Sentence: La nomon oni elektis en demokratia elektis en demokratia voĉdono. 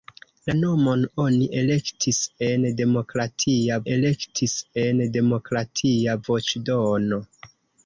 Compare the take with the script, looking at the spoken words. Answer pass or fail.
pass